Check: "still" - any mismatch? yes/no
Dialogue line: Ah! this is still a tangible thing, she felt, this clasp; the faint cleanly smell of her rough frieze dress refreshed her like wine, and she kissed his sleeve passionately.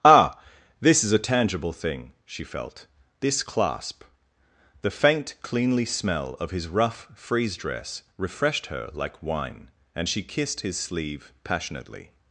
yes